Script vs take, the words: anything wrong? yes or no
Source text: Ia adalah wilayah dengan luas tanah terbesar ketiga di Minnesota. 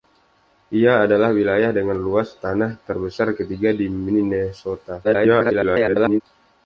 yes